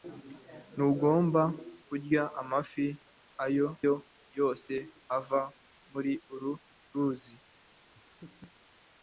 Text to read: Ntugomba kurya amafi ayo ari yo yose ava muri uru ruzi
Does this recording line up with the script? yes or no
no